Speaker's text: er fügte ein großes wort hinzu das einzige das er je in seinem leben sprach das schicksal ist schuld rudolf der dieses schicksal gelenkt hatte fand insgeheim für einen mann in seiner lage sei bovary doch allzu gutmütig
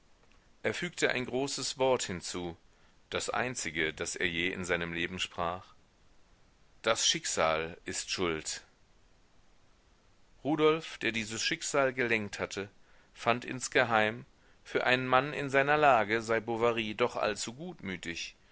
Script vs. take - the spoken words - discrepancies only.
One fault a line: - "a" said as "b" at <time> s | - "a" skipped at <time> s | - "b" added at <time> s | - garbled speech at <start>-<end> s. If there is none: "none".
none